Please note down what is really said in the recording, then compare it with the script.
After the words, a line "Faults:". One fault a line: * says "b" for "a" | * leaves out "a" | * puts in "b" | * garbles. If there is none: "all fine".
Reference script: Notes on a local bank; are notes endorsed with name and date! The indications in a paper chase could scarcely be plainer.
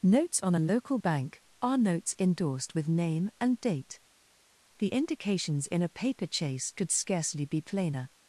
Notes on a local bank; are notes endorsed with name and date! The indications in a paper chase could scarcely be plainer.
Faults:
all fine